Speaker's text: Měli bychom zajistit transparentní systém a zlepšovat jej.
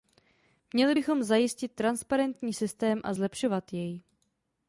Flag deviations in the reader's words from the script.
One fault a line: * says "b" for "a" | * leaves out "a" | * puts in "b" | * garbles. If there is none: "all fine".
all fine